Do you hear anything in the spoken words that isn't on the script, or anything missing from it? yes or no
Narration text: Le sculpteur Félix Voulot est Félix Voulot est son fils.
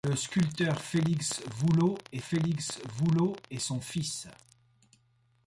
no